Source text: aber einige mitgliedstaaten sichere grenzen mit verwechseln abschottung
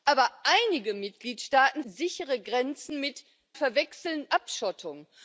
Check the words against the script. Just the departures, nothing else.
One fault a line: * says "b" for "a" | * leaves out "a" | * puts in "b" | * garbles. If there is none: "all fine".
all fine